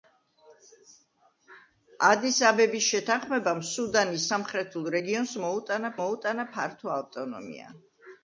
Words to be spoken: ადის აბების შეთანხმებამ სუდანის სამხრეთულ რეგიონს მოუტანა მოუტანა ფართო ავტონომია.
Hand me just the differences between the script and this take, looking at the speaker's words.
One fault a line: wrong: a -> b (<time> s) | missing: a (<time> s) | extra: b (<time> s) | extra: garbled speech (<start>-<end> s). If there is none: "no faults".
no faults